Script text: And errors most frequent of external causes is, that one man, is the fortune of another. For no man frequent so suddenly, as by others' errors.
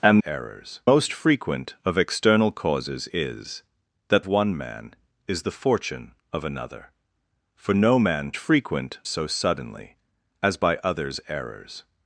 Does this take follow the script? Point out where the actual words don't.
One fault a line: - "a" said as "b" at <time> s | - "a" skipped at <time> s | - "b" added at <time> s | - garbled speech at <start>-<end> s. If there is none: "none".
none